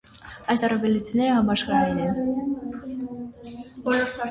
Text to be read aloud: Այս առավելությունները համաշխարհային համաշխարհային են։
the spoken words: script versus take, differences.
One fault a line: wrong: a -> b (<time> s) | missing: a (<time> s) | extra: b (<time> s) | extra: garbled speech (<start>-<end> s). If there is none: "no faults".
missing: համաշխարհային (2.0 s)